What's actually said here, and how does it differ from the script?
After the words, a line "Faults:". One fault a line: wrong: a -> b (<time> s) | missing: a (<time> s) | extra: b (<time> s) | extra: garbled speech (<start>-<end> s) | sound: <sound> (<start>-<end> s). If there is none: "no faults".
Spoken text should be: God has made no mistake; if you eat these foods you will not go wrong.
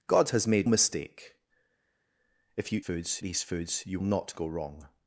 God has made mistake; if you foods these foods you not go wrong.
Faults:
missing: no (0.7 s)
wrong: eat -> foods (2.8 s)
missing: will (4.0 s)